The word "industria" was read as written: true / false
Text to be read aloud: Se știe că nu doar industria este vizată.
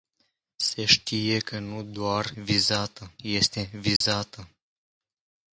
false